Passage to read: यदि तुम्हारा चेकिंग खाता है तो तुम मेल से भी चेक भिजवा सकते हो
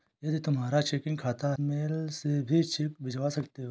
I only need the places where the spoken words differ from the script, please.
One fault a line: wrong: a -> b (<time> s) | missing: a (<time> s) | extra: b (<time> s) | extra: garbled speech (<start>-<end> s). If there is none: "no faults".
missing: है तो तुम (1.5 s)